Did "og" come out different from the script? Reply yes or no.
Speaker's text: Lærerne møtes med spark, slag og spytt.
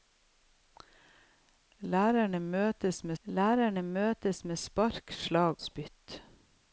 yes